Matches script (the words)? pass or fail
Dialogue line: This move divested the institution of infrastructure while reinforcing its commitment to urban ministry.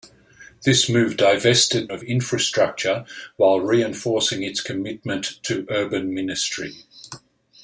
fail